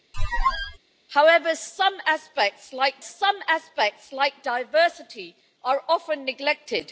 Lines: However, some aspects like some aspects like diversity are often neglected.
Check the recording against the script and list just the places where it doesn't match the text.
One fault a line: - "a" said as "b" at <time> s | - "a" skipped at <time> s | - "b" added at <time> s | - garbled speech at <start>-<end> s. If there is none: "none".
none